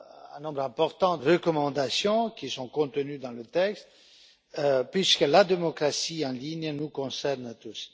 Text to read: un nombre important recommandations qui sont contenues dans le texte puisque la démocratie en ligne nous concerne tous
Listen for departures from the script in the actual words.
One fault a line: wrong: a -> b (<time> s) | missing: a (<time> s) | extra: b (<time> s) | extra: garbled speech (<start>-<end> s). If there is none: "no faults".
no faults